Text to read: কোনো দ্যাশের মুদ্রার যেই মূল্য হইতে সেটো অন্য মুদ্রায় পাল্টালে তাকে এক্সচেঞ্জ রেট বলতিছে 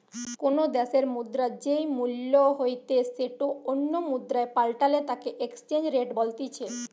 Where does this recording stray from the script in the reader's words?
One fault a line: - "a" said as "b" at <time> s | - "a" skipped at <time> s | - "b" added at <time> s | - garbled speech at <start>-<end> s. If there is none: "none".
none